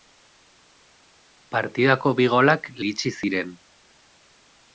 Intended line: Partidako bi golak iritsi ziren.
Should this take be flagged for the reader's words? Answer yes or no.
no